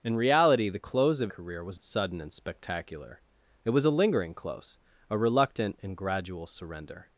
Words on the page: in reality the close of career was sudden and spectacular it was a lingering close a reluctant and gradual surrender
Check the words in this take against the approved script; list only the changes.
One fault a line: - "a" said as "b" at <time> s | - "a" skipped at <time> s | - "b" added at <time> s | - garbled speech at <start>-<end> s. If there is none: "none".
none